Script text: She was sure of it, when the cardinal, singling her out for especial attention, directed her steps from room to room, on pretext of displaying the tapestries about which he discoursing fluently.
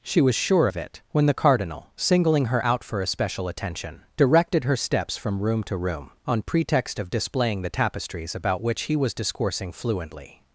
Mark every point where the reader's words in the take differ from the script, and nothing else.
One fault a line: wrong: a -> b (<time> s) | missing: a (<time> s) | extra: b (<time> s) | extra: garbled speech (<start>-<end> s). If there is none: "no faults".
extra: was (9.0 s)